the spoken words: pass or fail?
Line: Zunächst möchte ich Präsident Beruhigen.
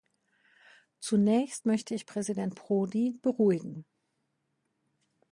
fail